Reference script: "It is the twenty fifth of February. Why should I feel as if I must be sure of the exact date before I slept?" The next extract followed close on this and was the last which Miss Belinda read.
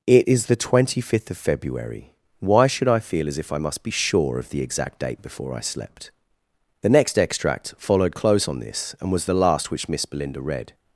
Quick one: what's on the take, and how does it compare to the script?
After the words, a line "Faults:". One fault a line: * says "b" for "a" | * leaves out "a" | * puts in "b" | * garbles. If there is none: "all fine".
"It is the twenty fifth of February. Why should I feel as if I must be sure of the exact date before I slept?" The next extract followed close on this and was the last which Miss Belinda read.
Faults:
all fine